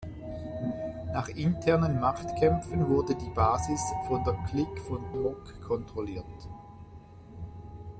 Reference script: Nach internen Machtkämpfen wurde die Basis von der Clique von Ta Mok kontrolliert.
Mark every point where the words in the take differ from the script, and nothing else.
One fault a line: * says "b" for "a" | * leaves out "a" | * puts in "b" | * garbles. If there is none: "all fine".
* leaves out "Ta"